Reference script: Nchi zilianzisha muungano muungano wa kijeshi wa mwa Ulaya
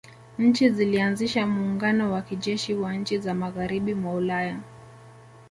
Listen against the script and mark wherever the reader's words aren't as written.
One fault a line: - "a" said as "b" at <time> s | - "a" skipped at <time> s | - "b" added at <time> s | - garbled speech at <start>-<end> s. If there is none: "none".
- "muungano" skipped at 2.1 s
- "nchi za magharibi" added at 2.9 s